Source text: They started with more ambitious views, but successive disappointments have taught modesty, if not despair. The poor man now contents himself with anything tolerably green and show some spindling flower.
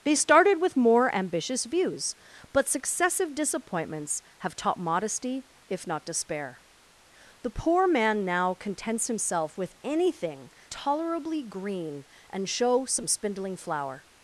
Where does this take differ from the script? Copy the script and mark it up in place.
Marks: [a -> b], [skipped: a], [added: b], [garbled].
They started with more ambitious views, but successive disappointments have taught modesty, if not despair. The poor man now contents himself with anything tolerably green and show some spindling flower.